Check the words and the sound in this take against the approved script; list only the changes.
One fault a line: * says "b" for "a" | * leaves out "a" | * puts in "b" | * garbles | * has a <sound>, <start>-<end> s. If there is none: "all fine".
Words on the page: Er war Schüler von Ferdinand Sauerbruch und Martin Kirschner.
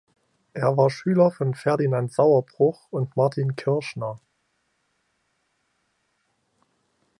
all fine